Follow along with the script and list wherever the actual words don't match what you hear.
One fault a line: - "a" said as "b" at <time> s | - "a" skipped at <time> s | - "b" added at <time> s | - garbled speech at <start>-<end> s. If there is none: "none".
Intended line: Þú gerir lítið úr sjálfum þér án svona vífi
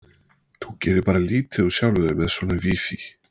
- "bara" added at 1.1 s
- "án" said as "með" at 2.2 s